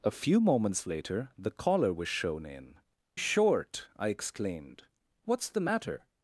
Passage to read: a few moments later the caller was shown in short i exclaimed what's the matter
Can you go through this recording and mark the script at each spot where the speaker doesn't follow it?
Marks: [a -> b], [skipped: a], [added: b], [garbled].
a few moments later the caller was shown in short i exclaimed what's the matter